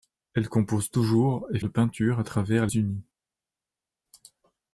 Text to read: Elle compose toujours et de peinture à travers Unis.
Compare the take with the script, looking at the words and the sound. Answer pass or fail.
pass